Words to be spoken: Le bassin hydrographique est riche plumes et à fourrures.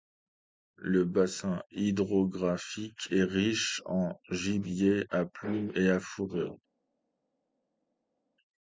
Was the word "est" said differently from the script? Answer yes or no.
no